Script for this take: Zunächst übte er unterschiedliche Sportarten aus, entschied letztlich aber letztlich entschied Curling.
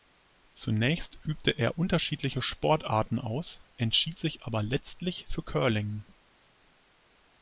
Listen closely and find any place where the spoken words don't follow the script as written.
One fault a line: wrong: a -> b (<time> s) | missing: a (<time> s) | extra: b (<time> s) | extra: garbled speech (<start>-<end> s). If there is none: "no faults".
wrong: letztlich -> sich (4.2 s)
wrong: entschied -> für (5.3 s)